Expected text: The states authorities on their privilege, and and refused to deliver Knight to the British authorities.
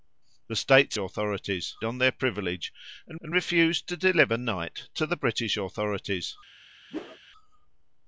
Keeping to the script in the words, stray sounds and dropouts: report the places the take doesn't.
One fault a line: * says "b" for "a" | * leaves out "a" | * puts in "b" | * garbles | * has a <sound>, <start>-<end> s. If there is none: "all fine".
* has a whoosh, 6.9-7.2 s